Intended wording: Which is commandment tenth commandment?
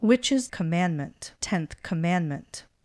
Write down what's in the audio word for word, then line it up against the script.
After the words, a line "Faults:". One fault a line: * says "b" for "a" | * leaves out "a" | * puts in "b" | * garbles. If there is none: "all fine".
Which is commandment tenth commandment?
Faults:
all fine